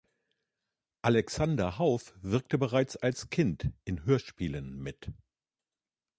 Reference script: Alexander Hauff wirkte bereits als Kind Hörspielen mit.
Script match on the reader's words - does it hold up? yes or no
no